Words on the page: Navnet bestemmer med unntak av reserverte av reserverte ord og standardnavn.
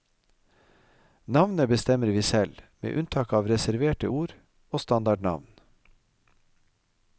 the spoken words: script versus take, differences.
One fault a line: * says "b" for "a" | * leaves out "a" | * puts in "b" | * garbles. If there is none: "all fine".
* puts in "vi selv"
* leaves out "av reserverte"